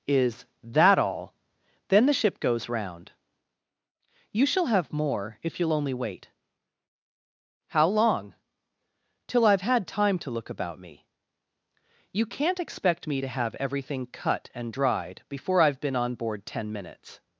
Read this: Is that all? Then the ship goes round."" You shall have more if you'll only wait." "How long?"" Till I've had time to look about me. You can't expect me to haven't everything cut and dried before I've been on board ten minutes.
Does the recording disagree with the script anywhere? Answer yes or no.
yes